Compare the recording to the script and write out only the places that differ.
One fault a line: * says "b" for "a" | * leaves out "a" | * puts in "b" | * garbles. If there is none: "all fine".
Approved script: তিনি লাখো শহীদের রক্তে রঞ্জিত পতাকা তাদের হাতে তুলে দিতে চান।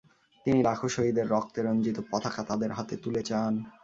* leaves out "দিতে"